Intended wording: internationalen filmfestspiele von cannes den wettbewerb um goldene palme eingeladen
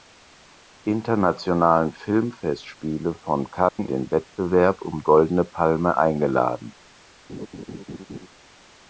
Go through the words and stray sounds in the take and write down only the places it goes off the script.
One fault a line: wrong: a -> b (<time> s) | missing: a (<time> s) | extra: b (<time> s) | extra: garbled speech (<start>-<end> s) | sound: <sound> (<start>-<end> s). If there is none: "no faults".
sound: dropout (3.7-3.8 s)
sound: laugh (7.3-8.3 s)